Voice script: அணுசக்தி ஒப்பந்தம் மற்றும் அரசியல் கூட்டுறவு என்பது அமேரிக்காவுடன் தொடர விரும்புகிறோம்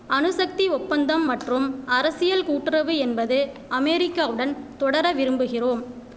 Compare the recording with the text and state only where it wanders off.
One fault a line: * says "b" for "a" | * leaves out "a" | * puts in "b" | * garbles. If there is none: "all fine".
all fine